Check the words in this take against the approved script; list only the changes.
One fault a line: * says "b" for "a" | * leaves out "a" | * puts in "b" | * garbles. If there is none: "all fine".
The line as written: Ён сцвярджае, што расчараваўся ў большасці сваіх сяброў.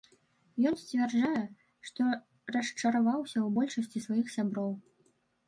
all fine